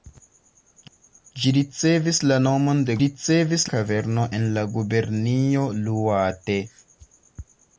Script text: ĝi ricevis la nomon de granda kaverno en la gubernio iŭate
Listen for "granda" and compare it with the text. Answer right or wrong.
wrong